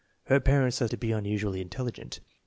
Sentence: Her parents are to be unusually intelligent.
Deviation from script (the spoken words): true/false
false